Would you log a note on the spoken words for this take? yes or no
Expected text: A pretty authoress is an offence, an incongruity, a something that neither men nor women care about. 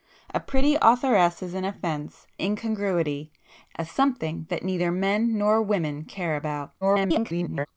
yes